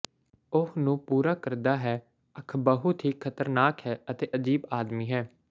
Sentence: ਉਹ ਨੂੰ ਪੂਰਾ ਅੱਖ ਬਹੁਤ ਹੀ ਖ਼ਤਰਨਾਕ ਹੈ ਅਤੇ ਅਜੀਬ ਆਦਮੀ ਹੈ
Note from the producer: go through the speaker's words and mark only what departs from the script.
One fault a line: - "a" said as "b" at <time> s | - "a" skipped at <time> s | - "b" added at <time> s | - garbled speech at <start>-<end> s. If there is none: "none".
- "ਕਰਦਾ ਹੈ" added at 1.4 s